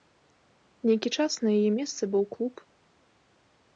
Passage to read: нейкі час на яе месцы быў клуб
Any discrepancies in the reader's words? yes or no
no